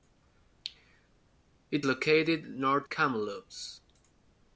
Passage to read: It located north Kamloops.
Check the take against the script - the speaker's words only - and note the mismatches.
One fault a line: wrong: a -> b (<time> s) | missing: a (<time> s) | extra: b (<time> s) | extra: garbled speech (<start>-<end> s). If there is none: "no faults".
no faults